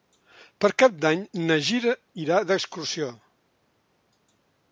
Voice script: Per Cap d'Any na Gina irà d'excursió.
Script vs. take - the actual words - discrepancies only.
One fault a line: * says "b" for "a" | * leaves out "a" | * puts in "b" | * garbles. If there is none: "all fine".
all fine